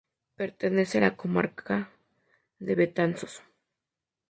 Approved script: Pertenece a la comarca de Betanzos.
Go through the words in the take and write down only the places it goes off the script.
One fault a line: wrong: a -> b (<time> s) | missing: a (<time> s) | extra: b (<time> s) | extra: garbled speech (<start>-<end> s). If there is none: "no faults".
no faults